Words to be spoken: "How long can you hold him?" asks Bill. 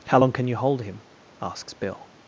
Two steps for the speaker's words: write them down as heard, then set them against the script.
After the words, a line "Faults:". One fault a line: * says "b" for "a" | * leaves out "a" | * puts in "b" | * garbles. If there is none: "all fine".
"How long can you hold him?" asks Bill.
Faults:
all fine